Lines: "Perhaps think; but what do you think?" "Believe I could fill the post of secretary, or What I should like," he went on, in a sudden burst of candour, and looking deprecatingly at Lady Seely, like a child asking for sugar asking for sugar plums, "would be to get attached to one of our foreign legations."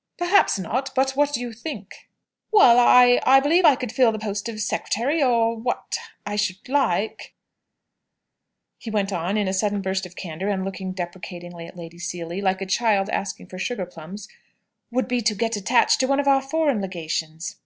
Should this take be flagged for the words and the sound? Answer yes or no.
yes